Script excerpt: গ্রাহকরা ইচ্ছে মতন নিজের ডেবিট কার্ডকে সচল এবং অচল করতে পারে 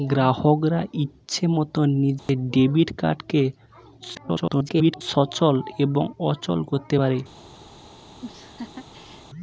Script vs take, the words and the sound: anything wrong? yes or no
yes